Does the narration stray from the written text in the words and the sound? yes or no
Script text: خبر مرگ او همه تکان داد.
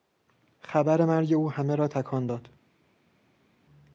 yes